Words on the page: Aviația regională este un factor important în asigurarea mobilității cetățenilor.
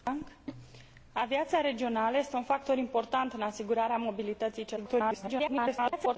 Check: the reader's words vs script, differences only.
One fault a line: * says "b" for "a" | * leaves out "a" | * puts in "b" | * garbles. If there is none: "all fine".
* garbles